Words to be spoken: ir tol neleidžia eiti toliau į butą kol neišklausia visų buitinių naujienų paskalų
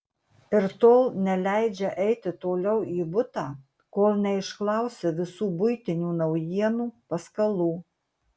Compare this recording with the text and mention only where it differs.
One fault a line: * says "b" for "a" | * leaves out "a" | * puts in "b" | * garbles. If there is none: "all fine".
all fine